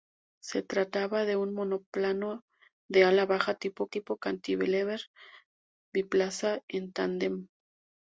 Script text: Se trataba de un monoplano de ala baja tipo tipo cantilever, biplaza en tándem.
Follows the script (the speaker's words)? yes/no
yes